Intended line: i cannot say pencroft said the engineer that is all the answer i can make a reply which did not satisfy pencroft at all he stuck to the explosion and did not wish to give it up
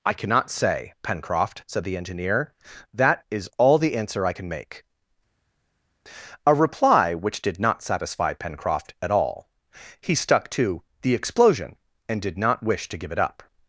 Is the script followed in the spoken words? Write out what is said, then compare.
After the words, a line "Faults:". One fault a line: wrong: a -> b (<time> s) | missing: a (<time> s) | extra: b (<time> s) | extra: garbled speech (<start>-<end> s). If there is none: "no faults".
i cannot say pencroft said the engineer that is all the answer i can make a reply which did not satisfy pencroft at all he stuck to the explosion and did not wish to give it up
Faults:
no faults